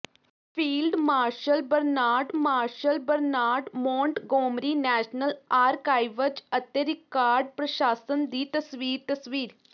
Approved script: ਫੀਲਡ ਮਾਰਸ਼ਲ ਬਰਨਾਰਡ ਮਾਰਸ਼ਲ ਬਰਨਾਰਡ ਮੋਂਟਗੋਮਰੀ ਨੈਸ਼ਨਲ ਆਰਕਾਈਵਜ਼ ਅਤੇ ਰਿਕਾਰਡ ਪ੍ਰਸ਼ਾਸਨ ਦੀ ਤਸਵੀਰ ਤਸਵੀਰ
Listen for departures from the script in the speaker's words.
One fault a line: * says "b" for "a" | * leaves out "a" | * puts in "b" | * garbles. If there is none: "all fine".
all fine